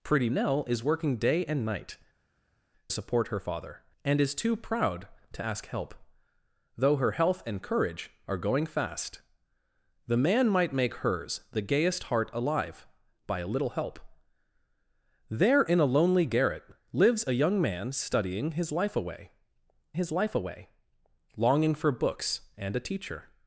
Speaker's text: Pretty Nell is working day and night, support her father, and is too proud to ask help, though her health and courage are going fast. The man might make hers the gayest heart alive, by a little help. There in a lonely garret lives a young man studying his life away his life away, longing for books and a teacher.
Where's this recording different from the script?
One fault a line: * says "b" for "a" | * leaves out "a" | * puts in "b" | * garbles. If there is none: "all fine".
all fine